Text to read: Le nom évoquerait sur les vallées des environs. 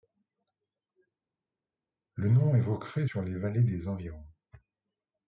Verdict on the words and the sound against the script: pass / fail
pass